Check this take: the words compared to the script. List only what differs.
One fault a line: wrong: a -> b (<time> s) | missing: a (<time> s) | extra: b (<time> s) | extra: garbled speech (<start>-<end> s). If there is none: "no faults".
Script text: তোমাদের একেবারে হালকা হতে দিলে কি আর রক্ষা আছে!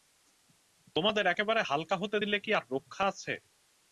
no faults